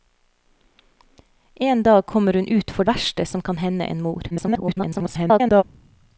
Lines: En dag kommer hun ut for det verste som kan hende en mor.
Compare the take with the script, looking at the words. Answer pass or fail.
fail